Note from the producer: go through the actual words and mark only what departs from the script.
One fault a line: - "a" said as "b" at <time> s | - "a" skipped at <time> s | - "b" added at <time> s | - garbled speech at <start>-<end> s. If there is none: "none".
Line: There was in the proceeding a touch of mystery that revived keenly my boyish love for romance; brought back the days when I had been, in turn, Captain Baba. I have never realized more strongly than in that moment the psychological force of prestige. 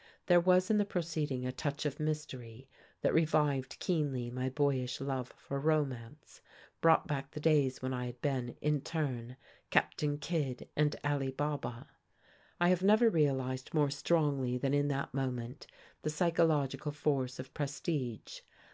- "Kidd and Ali" added at 10.2 s